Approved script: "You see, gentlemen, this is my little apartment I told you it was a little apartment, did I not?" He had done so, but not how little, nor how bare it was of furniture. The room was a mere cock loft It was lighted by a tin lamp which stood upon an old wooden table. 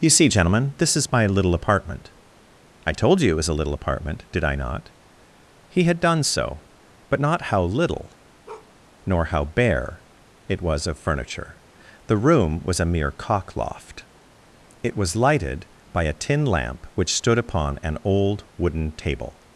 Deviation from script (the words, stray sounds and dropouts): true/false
true